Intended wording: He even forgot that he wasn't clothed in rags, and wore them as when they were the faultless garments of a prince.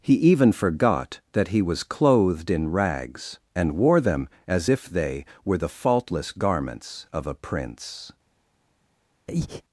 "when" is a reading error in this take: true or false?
true